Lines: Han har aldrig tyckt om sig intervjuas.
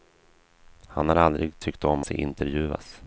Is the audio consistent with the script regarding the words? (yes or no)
yes